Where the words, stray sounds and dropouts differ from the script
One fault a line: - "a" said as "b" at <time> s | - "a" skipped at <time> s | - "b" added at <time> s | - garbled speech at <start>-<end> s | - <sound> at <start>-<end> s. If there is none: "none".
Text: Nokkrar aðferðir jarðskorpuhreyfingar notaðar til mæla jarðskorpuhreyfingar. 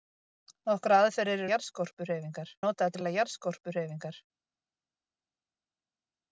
none